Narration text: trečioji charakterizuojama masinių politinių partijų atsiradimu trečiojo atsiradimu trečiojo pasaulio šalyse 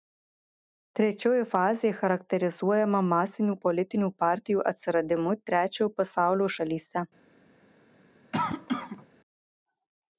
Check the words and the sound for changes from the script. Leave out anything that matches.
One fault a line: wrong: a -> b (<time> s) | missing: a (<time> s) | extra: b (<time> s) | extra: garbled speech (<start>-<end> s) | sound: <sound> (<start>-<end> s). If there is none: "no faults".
extra: fazė (1.5 s)
missing: atsiradimu trečiojo (5.9 s)
sound: cough (8.3-9.1 s)